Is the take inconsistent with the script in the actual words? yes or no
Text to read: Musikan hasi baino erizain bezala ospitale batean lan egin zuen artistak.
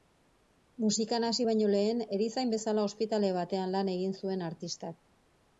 yes